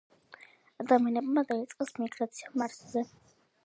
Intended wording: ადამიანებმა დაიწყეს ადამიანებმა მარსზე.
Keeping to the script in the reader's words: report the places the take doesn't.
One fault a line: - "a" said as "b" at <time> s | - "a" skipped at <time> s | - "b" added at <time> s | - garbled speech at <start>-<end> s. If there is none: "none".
- "ადამიანებმა" said as "მიგრაცია" at 2.0 s